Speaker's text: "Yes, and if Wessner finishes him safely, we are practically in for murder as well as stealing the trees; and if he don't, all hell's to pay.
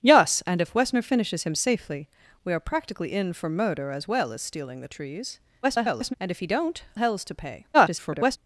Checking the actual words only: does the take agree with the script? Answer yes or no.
no